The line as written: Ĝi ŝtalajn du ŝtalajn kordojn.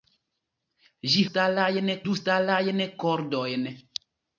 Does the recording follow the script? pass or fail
pass